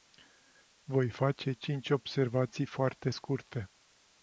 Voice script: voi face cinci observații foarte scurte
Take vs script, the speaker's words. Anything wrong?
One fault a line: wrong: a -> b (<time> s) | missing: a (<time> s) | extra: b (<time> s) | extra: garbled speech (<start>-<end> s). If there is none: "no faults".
no faults